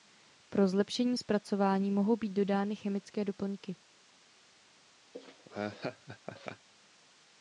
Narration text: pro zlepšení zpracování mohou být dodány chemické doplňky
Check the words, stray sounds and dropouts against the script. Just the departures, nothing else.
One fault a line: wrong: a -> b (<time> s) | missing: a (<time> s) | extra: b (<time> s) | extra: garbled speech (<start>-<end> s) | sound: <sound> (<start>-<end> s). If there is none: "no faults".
sound: laugh (5.1-6.7 s)